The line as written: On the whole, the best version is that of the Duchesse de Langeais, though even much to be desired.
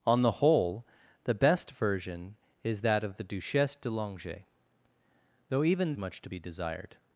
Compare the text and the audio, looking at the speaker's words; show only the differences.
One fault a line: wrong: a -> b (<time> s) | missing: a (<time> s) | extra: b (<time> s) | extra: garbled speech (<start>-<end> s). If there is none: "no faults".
no faults